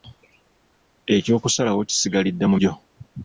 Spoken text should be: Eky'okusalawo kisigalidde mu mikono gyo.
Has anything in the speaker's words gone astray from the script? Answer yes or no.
yes